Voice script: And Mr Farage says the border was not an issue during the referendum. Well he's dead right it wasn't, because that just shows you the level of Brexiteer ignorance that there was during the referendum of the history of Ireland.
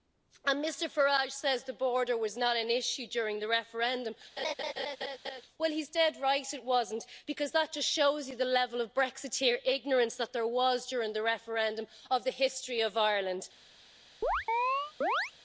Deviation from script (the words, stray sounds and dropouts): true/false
true